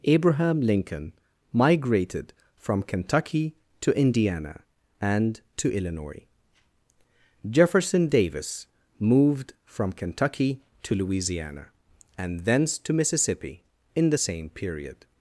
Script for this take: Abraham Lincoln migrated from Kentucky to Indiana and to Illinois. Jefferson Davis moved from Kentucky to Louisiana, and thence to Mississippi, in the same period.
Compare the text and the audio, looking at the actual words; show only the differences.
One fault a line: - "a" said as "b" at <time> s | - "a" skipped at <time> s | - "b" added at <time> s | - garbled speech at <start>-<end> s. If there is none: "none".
none